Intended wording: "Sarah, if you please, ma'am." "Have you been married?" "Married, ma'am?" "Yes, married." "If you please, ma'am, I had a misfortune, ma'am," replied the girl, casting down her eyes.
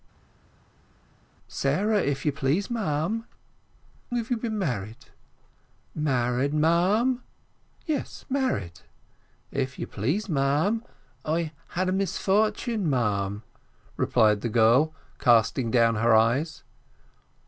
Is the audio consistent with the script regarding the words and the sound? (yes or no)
yes